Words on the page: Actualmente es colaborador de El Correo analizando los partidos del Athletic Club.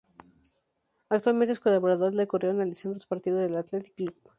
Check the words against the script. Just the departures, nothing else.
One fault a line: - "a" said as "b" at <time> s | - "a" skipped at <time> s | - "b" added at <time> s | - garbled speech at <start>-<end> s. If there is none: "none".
none